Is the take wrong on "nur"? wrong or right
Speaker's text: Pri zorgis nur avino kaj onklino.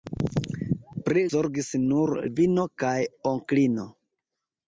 right